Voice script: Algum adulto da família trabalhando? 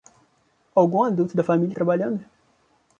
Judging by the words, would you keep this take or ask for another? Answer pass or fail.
pass